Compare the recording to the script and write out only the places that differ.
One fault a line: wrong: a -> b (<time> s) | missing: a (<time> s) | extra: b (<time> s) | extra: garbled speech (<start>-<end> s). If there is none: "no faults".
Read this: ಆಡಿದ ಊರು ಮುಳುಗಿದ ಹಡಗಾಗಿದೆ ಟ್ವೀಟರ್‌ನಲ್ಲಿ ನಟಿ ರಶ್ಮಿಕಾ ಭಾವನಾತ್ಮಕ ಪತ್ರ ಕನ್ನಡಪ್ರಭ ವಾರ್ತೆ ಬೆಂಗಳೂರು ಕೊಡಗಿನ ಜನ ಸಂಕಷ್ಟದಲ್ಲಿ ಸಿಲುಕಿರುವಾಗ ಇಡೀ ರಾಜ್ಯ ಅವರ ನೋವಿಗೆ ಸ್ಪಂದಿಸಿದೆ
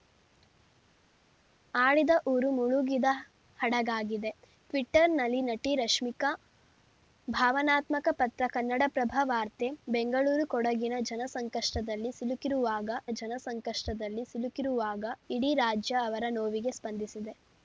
extra: ಜನ ಸಂಕಷ್ಟದಲ್ಲಿ ಸಿಲುಕಿರುವಾಗ (13.1 s)